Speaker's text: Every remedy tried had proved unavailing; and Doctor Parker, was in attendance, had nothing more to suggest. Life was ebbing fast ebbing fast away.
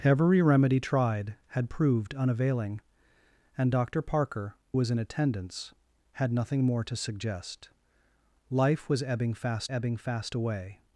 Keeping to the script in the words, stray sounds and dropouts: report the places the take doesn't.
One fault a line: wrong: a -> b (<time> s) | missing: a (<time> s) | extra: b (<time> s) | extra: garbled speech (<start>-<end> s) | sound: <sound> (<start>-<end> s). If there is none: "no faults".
no faults